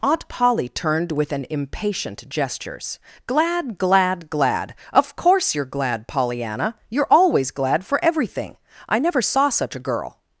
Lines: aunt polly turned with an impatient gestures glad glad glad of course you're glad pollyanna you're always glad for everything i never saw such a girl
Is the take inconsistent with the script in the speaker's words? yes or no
no